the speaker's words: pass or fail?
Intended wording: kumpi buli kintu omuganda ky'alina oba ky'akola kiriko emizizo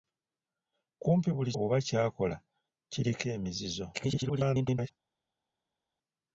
fail